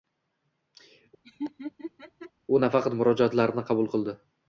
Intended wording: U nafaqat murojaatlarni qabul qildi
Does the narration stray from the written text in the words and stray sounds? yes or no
yes